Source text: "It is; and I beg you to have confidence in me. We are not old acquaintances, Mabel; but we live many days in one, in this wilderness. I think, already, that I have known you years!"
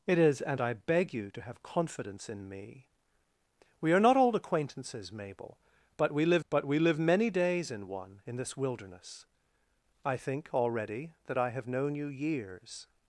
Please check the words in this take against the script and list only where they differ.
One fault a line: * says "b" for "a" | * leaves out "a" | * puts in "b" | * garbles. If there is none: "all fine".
* puts in "but we live"